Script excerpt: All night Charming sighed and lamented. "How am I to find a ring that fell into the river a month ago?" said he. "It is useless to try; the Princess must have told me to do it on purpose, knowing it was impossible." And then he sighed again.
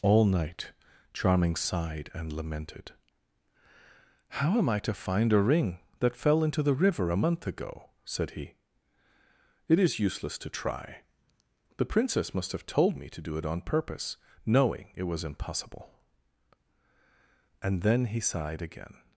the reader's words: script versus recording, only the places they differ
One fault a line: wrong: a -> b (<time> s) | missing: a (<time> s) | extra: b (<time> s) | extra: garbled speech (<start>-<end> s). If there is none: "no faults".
no faults